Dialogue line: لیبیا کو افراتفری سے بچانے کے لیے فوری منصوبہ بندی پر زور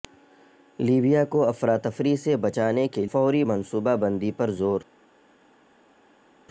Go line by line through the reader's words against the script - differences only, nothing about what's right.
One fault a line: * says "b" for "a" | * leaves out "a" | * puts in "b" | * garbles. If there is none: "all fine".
* leaves out "لیے"